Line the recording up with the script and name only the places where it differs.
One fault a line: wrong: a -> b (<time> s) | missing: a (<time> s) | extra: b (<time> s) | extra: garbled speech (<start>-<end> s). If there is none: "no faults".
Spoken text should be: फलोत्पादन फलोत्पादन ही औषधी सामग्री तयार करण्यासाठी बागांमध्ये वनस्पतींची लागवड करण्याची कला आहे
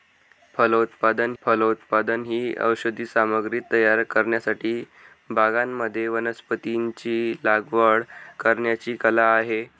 no faults